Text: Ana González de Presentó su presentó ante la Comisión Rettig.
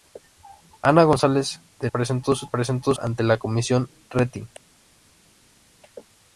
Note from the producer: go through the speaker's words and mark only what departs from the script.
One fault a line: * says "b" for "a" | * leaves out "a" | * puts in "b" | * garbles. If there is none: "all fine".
all fine